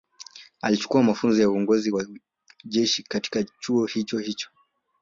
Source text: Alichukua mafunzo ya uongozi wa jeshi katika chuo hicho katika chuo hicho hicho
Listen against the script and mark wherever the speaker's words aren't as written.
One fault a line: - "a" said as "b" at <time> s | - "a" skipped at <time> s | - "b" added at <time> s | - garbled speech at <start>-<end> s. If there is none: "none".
- "katika chuo hicho" skipped at 4.2 s